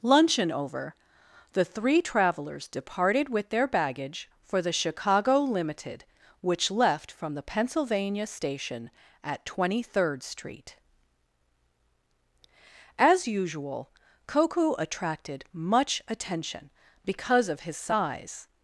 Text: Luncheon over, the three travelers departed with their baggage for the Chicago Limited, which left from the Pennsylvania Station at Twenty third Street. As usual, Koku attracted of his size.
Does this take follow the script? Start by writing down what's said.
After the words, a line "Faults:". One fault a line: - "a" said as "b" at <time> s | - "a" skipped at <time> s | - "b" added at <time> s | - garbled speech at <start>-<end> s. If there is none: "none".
Luncheon over, the three travelers departed with their baggage for the Chicago Limited, which left from the Pennsylvania Station at Twenty third Street. As usual, Koku attracted much attention because of his size.
Faults:
- "much attention because" added at 15.5 s